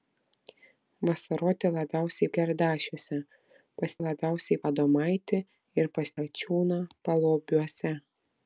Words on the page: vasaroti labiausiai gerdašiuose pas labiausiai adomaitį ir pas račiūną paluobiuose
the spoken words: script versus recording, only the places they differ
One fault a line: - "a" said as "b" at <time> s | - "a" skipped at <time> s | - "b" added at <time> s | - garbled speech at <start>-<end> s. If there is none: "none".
none